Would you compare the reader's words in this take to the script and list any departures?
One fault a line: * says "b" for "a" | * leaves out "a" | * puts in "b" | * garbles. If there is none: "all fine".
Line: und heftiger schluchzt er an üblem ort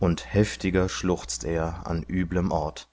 all fine